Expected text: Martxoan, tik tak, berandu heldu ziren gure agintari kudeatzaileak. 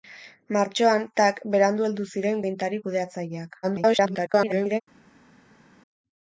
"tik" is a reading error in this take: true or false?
true